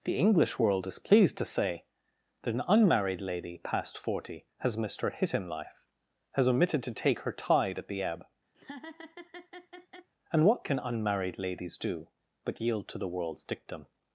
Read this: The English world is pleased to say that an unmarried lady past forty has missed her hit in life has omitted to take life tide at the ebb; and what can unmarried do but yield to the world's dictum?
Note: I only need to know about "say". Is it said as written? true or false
true